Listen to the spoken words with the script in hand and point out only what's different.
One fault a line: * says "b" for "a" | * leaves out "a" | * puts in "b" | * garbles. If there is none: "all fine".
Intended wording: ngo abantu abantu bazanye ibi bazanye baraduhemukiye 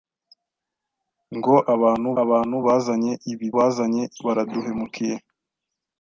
all fine